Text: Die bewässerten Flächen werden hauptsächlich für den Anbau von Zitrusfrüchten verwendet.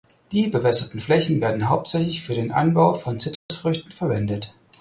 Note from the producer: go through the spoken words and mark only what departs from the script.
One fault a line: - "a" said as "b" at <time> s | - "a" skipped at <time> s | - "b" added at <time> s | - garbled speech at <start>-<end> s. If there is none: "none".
none